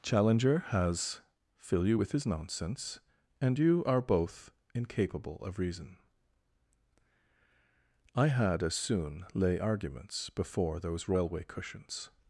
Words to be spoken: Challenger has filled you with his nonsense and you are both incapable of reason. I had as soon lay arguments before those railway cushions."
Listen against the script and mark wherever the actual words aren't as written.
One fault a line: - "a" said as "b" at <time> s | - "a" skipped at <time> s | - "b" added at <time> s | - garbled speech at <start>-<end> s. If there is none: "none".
- "filled" said as "fill" at 1.6 s